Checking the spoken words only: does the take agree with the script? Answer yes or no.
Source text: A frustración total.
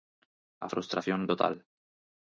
yes